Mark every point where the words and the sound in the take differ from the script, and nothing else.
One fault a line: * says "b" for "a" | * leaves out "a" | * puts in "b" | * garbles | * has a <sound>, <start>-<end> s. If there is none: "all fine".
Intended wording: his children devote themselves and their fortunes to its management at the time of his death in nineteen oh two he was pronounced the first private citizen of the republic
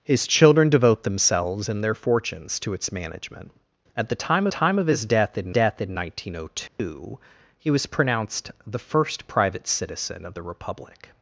* puts in "time"
* puts in "death in"
* has a dropout, 6.7-6.8 s